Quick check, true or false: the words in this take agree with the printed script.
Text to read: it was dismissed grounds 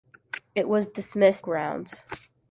true